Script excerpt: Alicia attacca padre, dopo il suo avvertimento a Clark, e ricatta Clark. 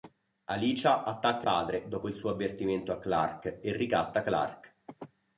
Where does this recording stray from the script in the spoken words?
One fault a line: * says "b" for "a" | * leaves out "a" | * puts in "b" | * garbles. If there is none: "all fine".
all fine